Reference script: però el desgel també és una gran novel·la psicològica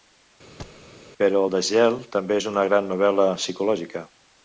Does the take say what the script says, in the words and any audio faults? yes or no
no